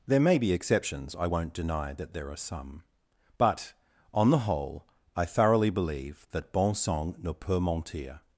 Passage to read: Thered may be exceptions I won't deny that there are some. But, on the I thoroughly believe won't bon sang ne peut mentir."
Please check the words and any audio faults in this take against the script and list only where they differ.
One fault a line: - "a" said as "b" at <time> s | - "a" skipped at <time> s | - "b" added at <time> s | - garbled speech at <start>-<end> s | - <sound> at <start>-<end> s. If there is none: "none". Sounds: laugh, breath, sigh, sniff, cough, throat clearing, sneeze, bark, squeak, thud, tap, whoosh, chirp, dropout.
- "Thered" said as "There" at 0.1 s
- "whole" added at 4.4 s
- "won't" said as "that" at 6.3 s